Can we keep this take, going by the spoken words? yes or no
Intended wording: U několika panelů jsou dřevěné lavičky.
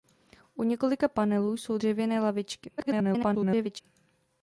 no